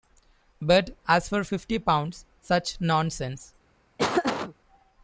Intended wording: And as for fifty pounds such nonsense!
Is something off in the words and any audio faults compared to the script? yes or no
yes